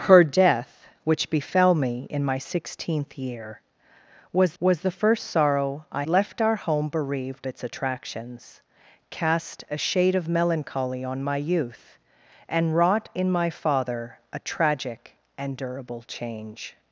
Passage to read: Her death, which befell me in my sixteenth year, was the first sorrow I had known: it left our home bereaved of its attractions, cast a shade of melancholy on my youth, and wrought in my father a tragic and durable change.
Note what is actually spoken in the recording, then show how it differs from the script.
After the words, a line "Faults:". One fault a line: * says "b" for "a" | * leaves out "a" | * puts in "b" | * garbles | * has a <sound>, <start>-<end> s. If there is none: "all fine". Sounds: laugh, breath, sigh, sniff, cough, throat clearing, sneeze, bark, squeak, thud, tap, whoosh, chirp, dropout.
Her death, which befell me in my sixteenth year, was was the first sorrow I left our home bereaved its attractions, cast a shade of melancholy on my youth, and wrought in my father a tragic and durable change.
Faults:
* puts in "was"
* leaves out "had known it"
* leaves out "of"